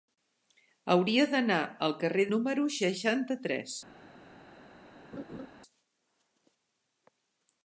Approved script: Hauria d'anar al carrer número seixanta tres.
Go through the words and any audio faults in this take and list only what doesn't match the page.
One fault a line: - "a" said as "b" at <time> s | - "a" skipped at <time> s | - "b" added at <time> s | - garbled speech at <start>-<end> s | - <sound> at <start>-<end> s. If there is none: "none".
- laugh at 5.1-5.5 s